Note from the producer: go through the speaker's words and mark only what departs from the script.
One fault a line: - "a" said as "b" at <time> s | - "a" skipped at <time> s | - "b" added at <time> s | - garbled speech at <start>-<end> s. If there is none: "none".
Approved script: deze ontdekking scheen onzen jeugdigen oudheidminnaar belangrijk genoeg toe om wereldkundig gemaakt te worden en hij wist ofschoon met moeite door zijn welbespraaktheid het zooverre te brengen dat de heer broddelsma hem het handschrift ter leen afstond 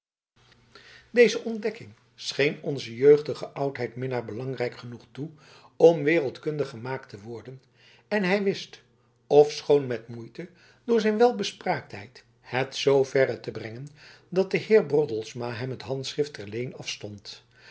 none